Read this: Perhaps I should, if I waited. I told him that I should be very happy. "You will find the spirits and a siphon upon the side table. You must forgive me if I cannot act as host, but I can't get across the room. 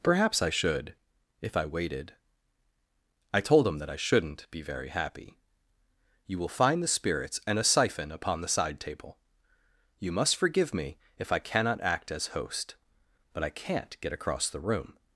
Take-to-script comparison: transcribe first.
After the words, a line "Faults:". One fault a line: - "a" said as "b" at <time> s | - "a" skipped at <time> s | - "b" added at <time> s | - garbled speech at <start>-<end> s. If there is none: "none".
Perhaps I should, if I waited. I told him that I shouldn't be very happy. "You will find the spirits and a siphon upon the side table. You must forgive me if I cannot act as host, but I can't get across the room.
Faults:
- "should" said as "shouldn't" at 4.0 s